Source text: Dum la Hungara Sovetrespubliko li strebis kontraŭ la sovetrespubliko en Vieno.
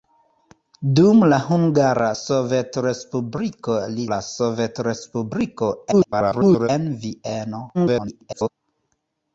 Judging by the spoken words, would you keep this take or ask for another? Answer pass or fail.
fail